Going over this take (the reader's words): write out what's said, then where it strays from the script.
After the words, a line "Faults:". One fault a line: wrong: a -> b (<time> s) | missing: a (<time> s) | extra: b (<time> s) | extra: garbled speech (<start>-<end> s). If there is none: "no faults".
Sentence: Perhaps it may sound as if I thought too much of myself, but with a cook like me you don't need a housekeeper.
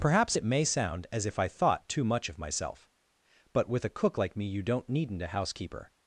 Perhaps it may sound as if I thought too much of myself, but with a cook like me you don't needn't a housekeeper.
Faults:
wrong: need -> needn't (4.9 s)